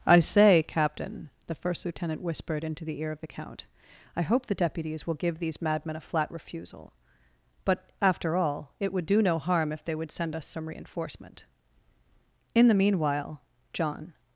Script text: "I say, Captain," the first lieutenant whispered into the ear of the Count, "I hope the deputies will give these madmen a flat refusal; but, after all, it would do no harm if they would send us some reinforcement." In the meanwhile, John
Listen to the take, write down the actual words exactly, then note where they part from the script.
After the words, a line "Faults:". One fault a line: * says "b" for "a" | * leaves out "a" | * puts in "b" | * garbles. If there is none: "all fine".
"I say, Captain," the first lieutenant whispered into the ear of the Count, "I hope the deputies will give these madmen a flat refusal; but, after all, it would do no harm if they would send us some reinforcement." In the meanwhile, John
Faults:
all fine